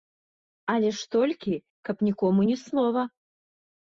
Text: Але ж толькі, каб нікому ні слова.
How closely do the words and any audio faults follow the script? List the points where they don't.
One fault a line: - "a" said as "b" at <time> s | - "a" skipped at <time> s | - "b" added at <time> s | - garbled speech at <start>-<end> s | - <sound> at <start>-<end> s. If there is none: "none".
none